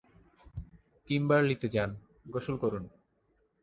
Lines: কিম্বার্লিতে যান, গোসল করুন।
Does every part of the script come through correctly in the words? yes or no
yes